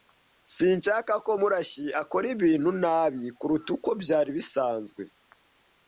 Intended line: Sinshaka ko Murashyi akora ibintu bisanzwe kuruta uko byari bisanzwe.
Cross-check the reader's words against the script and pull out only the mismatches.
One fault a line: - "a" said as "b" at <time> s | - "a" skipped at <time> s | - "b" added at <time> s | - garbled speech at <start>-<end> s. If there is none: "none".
- "bisanzwe" said as "nabi" at 2.8 s